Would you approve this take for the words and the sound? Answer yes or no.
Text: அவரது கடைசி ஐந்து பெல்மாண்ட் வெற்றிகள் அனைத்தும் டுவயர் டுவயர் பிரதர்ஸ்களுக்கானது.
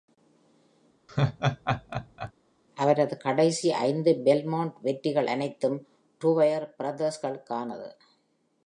no